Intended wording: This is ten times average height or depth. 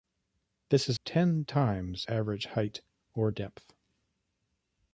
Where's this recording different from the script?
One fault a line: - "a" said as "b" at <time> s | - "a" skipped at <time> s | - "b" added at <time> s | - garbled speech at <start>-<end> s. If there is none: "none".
none